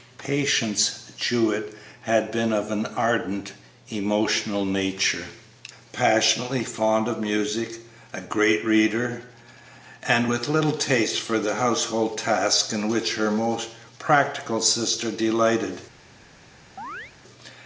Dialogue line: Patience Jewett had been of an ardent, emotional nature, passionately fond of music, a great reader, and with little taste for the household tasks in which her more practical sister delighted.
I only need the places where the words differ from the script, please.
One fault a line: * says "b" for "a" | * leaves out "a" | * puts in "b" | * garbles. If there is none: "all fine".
all fine